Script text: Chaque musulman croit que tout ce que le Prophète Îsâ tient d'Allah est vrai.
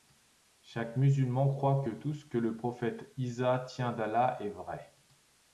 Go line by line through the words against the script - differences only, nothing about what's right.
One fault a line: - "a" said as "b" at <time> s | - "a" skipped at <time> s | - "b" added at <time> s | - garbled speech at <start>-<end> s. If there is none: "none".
none